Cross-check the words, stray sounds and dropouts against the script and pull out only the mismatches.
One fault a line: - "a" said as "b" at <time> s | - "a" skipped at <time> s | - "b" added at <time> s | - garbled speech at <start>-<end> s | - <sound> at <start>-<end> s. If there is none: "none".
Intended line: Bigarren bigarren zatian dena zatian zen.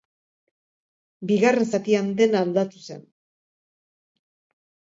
- "bigarren" skipped at 1.7 s
- "zatian" said as "aldatu" at 2.5 s